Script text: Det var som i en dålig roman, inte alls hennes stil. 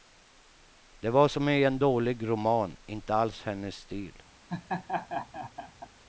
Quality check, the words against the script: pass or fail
pass